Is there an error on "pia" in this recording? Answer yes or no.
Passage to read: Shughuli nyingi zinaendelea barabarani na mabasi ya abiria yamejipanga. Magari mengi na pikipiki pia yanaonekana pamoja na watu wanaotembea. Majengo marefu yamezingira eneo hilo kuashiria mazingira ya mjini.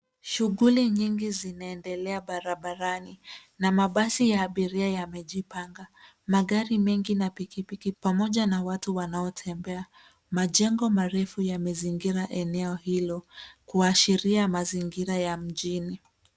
yes